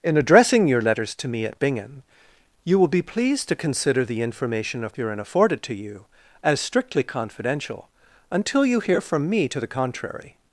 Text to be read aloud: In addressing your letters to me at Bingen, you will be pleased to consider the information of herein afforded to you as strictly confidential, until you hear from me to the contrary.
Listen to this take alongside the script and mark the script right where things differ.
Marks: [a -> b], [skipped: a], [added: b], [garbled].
In addressing your letters to me at Bingen, you will be pleased to consider the information of herein afforded to you as strictly confidential, until you hear from me to the contrary.